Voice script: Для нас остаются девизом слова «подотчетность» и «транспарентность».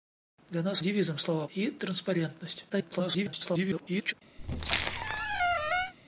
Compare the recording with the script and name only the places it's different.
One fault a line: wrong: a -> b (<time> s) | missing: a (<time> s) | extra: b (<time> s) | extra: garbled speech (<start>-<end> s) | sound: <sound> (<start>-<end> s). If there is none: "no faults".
missing: остаются (0.8 s)
missing: подотчетность (1.5 s)
extra: garbled speech (2.7-4.1 s)
sound: squeak (4.4-5.9 s)